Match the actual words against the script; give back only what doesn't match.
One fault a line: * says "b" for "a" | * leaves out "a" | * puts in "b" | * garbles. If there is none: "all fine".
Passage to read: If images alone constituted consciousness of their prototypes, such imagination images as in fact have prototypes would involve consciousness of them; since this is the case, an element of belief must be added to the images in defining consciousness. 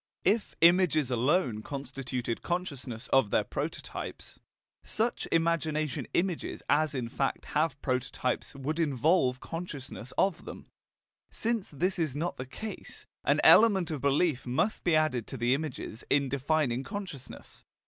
* puts in "not"